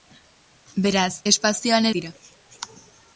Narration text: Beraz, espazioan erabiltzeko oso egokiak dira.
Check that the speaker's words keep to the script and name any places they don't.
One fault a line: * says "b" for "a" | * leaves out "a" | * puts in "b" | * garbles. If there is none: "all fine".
* leaves out "erabiltzeko oso egokiak"